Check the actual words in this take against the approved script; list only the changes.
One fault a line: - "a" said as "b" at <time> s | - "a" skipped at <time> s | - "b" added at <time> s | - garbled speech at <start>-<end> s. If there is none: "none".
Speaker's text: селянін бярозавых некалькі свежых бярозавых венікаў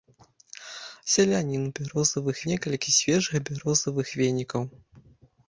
none